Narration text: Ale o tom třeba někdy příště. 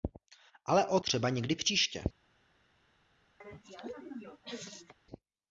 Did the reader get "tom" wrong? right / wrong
wrong